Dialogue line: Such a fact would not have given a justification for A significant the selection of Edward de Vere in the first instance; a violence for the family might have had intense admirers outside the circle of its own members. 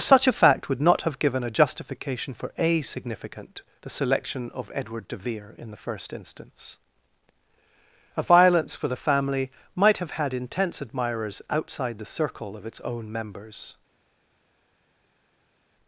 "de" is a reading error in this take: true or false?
false